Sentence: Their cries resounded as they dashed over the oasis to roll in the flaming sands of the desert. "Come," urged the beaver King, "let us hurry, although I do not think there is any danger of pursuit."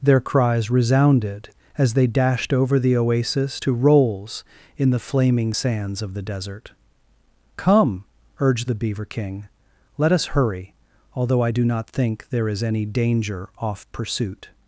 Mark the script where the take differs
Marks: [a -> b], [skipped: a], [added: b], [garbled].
Their cries resounded as they dashed over the oasis to [roll -> rolls] in the flaming sands of the desert. "Come," urged the beaver King, "let us hurry, although I do not think there is any danger [of -> off] pursuit."